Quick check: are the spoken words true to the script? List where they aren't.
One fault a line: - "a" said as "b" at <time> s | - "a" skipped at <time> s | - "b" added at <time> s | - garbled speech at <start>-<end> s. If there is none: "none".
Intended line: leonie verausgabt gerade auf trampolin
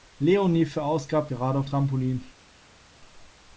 none